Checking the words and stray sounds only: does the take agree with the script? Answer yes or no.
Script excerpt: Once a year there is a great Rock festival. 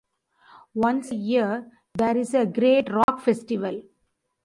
no